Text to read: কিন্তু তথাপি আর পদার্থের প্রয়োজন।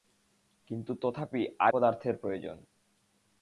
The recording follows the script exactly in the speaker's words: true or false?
true